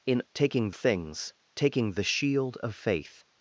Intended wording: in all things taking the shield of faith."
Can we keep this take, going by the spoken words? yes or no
no